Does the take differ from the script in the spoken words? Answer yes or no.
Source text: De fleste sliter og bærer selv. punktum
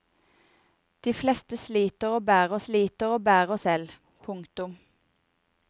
yes